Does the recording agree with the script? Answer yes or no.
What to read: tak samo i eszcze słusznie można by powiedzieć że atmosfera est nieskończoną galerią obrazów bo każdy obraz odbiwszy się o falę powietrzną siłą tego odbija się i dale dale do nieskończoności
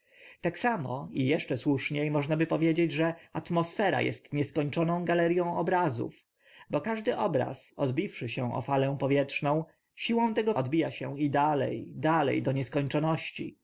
yes